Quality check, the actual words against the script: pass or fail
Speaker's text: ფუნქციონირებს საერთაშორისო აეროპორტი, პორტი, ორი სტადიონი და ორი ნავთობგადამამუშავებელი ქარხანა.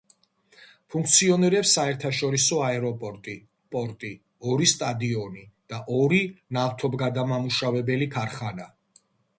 pass